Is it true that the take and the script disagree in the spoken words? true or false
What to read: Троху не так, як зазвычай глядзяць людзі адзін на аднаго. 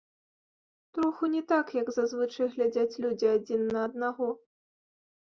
false